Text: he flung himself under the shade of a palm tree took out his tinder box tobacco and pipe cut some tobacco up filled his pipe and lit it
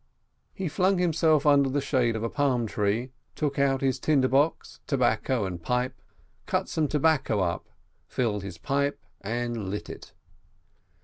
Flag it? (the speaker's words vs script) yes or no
no